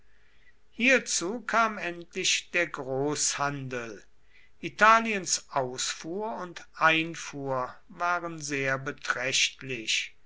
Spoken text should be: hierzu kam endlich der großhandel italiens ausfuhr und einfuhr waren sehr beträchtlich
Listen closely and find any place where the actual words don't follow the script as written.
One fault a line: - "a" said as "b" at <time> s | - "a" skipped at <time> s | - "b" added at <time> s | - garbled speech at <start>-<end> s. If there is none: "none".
none